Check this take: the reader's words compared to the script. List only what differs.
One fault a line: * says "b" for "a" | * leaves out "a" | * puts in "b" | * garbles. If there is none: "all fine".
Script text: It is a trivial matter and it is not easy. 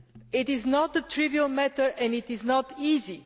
* puts in "not"